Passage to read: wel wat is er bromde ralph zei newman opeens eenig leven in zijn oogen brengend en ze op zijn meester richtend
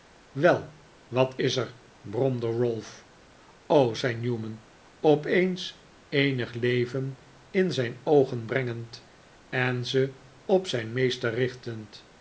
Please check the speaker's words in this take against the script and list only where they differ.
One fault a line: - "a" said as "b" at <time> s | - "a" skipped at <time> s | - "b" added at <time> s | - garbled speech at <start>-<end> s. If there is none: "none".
none